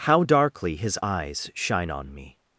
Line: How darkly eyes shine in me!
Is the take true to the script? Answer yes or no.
no